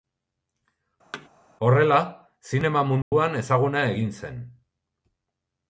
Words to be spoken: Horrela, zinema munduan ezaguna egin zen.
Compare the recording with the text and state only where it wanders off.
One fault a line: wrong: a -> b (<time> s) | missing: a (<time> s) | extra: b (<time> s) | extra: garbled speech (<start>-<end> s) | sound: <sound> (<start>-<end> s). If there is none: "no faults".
sound: thud (1.1-1.3 s)
sound: dropout (3.0-3.1 s)